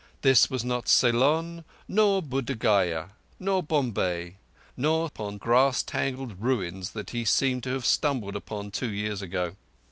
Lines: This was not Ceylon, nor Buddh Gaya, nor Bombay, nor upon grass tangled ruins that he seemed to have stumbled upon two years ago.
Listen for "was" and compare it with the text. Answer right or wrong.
right